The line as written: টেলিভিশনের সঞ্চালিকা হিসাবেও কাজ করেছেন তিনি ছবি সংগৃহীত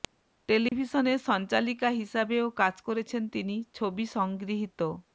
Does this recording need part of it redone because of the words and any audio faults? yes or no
yes